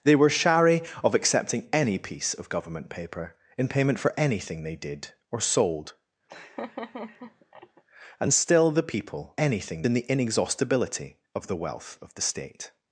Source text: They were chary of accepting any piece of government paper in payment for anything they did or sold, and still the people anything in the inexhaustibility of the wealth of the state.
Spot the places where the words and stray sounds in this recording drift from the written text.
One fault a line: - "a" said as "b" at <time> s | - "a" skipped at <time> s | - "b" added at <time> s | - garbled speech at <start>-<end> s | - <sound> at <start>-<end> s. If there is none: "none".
- laugh at 6.3-7.8 s